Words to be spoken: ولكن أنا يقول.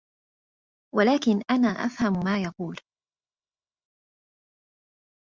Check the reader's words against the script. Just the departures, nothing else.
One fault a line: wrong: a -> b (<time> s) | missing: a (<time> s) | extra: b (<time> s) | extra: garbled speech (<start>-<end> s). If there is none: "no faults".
extra: أفهم ما (1.6 s)